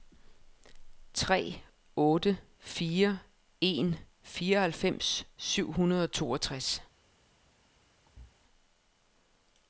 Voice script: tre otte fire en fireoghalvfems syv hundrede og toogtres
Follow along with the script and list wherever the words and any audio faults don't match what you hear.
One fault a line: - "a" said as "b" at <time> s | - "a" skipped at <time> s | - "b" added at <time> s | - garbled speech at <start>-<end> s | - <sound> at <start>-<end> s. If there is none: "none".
- thud at 8.1-8.4 s